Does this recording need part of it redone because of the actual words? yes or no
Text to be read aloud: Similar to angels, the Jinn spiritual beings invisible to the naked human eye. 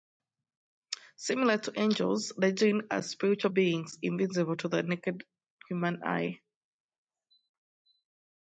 yes